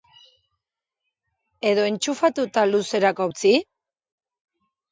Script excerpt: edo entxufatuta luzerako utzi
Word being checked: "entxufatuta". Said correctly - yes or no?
yes